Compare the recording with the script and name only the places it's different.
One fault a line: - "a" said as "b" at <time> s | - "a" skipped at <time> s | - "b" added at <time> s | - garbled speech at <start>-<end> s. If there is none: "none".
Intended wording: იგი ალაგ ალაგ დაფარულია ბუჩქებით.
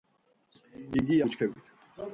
- "ალაგ ალაგ დაფარულია" skipped at 1.2 s